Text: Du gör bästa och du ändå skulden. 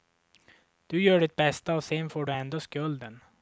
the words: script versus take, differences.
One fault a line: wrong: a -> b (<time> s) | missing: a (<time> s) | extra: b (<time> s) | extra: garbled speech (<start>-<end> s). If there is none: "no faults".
extra: ditt (1.2 s)
extra: sen får (1.8 s)